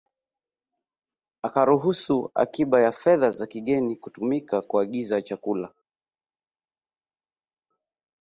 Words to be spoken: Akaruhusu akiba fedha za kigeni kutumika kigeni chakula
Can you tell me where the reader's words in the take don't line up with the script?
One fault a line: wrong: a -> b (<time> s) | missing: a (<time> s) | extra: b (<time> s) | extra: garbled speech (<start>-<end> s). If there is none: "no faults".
extra: ya (2.8 s)
wrong: kigeni -> kuagiza (4.6 s)